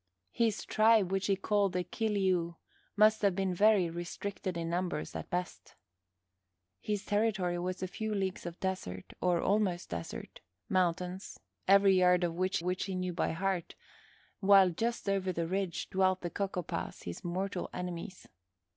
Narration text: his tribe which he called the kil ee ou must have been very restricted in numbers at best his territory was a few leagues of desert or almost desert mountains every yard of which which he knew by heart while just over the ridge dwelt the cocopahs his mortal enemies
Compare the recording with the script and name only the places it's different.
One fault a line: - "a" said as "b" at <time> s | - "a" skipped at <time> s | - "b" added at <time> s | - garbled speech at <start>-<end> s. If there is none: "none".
none